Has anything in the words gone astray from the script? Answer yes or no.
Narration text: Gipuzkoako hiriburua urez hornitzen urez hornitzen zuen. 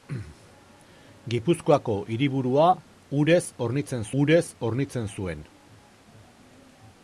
no